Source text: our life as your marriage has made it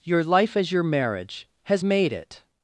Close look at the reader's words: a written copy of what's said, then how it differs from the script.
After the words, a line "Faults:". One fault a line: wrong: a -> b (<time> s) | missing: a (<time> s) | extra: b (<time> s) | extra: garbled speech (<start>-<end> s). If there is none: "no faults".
your life as your marriage has made it
Faults:
wrong: our -> your (0.0 s)